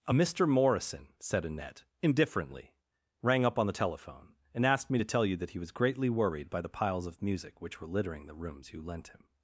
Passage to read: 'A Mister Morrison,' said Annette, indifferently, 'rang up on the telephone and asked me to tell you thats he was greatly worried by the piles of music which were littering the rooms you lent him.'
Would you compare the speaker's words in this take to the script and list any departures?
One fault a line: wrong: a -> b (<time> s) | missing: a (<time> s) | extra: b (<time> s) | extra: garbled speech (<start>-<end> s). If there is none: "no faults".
wrong: thats -> that (5.4 s)